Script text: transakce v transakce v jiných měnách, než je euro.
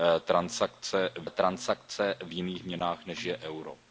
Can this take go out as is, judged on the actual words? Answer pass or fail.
pass